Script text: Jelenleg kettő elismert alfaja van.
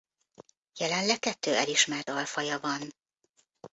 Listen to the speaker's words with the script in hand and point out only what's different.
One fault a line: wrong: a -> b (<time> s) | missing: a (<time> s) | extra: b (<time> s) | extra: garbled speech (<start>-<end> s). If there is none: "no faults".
no faults